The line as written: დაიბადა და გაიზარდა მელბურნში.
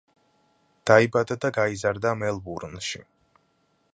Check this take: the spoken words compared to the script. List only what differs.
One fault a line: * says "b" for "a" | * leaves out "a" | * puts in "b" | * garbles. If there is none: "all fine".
all fine